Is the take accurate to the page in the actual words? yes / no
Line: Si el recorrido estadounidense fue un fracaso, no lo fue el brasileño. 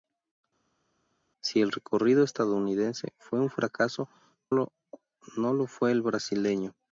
no